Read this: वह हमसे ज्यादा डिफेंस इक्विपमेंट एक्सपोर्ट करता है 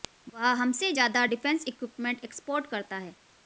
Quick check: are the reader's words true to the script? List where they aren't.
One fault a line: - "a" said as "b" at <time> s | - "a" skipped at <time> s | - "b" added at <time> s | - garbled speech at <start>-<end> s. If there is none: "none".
none